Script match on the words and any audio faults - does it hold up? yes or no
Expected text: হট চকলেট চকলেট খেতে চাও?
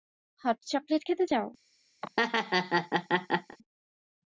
no